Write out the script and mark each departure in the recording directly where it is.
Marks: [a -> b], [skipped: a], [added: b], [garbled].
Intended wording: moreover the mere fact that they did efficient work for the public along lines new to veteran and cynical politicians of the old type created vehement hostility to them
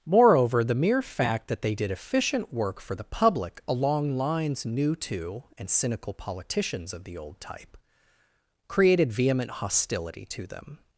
moreover the mere fact that they did efficient work for the public along lines new to [skipped: veteran] and cynical politicians of the old type created vehement hostility to them